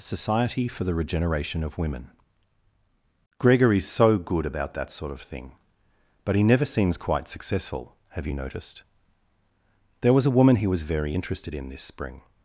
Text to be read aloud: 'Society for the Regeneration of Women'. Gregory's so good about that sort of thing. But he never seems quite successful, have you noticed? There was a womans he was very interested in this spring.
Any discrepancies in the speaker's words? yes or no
yes